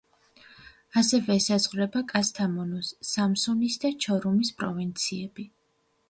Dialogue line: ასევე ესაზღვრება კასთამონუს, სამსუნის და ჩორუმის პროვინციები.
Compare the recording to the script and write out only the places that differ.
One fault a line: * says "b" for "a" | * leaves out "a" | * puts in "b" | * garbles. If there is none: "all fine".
all fine